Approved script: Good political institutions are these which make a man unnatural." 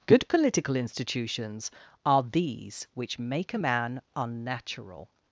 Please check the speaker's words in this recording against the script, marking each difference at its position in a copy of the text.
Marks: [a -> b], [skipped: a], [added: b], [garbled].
Good political institutions are these which make a man unnatural."